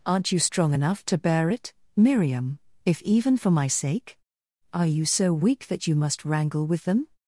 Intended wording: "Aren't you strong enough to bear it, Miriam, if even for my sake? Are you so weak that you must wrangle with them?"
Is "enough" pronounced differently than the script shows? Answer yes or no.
no